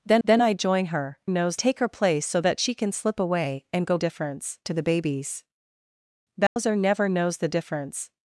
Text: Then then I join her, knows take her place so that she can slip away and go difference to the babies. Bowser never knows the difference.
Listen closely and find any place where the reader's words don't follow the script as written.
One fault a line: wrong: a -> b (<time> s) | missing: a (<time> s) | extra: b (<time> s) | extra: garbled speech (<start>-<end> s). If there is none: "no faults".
no faults